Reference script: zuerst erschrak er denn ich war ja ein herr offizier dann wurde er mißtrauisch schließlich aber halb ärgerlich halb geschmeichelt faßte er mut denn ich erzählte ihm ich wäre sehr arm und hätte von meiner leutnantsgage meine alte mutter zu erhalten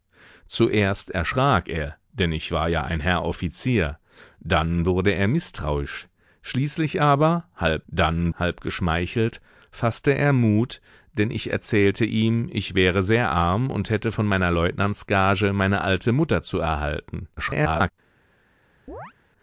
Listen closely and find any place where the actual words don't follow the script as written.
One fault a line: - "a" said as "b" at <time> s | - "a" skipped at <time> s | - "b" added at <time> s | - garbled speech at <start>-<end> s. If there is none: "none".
- "ärgerlich" said as "dann" at 7.9 s
- garbled speech at 17.4-17.9 s